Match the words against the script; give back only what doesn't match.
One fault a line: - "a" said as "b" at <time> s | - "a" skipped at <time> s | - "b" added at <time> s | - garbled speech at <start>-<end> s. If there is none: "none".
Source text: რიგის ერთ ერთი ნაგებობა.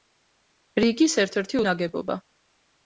none